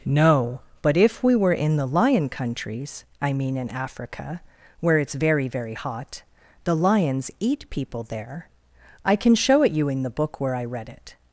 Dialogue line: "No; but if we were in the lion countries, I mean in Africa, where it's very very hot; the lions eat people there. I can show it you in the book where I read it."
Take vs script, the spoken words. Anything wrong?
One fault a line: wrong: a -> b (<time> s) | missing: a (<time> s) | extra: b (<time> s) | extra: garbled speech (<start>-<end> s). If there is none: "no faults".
no faults